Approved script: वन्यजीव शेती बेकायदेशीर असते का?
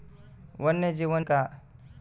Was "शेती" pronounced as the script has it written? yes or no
no